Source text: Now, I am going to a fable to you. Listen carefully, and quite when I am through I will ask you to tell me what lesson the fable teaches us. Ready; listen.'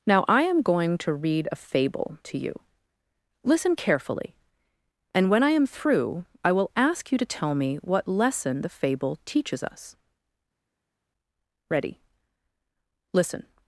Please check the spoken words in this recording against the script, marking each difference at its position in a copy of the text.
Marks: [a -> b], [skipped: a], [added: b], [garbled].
Now, I am going to [added: read] a fable to you. Listen carefully, and [skipped: quite] when I am through I will ask you to tell me what lesson the fable teaches us. Ready; listen.'